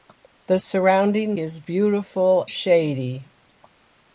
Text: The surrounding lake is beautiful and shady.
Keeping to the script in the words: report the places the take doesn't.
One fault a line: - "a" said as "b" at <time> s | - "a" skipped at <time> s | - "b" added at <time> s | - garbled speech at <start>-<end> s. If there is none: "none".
- "lake" skipped at 1.4 s
- "and" skipped at 2.5 s